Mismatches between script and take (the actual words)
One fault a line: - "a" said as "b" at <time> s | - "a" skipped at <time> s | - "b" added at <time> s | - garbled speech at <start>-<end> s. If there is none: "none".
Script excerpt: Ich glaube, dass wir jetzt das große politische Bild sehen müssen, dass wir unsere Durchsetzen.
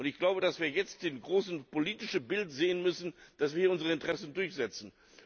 - "Interessen" added at 3.9 s